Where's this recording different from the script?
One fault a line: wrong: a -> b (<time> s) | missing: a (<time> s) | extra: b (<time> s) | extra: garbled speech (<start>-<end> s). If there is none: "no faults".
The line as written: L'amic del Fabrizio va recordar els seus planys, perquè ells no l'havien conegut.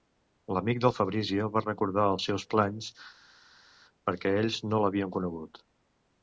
no faults